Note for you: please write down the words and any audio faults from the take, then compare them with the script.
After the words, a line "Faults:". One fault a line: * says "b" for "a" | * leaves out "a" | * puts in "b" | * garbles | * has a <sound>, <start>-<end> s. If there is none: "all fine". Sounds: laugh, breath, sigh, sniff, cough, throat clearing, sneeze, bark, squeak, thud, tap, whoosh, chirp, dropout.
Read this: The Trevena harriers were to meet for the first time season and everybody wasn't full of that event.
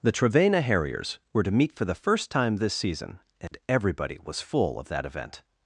The Trevena harriers were to meet for the first time this season and everybody was full of that event.
Faults:
* puts in "this"
* has a dropout, 3.5-3.5 s
* says "was" for "wasn't"